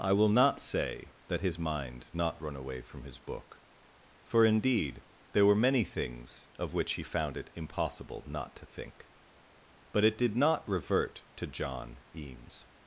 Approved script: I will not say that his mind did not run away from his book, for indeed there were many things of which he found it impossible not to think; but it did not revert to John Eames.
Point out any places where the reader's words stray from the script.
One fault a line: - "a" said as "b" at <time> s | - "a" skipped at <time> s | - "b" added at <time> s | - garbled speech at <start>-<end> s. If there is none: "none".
- "did" skipped at 2.1 s